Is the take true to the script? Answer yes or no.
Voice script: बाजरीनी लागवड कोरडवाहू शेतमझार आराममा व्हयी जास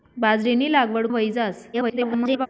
no